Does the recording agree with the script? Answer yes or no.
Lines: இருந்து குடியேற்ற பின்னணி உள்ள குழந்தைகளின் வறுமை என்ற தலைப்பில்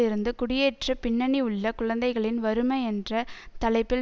yes